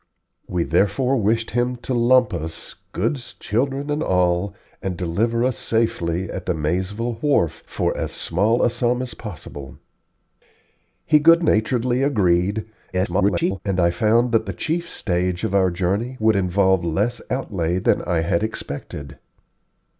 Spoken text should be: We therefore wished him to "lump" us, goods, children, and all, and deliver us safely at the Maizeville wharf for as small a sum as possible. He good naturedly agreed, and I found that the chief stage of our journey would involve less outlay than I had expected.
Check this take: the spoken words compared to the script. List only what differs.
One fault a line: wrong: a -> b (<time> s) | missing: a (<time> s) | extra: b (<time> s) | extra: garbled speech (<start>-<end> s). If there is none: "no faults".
extra: garbled speech (12.9-13.6 s)